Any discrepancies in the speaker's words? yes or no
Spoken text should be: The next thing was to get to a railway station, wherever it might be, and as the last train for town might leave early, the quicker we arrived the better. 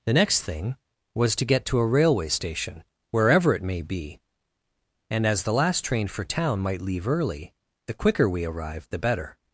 yes